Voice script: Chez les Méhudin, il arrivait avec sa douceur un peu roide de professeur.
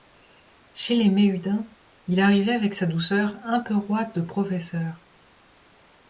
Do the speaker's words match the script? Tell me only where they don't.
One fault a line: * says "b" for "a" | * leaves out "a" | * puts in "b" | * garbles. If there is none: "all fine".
all fine